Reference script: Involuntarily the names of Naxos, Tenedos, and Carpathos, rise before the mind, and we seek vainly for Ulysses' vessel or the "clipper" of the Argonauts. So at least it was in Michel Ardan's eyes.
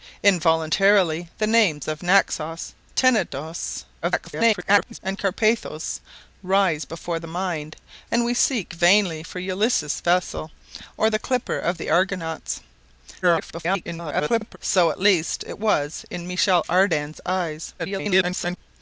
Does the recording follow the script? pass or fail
fail